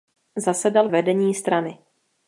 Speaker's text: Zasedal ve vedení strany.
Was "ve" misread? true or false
true